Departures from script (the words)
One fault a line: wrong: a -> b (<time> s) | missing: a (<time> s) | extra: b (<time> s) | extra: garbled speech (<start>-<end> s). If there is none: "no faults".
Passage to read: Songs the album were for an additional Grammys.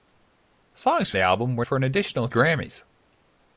no faults